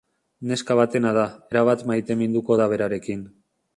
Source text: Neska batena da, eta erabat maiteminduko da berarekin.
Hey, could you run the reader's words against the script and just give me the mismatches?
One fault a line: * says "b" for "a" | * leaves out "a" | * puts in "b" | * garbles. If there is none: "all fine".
* leaves out "eta"